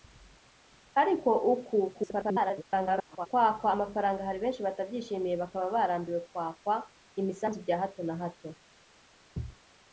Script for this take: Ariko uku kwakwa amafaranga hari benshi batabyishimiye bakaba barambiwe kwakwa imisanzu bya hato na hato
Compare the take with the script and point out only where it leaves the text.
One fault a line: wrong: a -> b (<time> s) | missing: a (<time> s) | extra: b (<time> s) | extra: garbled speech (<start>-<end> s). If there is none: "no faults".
extra: garbled speech (1.9-3.3 s)